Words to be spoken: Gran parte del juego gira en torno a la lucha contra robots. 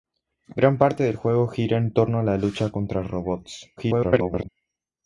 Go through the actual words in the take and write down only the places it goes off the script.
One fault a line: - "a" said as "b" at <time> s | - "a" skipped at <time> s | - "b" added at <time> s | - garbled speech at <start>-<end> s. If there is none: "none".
- garbled speech at 3.8-4.5 s